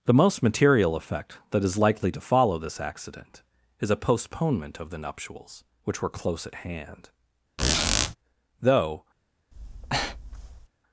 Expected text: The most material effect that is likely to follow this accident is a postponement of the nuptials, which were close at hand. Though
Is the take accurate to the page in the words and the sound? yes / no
no